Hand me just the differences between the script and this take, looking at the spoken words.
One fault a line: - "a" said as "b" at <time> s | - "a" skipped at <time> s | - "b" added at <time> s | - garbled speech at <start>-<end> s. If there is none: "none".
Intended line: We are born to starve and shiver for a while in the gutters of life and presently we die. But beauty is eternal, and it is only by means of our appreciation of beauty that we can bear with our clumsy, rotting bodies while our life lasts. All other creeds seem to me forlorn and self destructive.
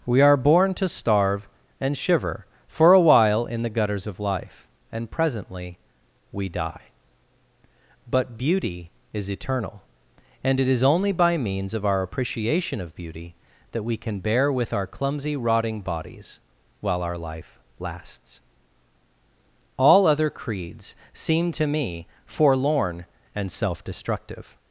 none